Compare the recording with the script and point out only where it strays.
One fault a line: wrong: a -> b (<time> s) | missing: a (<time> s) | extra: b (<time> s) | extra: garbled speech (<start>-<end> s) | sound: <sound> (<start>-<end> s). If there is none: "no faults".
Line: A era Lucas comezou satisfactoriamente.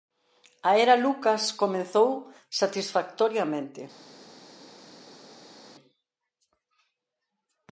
no faults